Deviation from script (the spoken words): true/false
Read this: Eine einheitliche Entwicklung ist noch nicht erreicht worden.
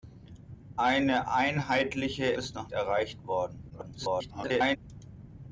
true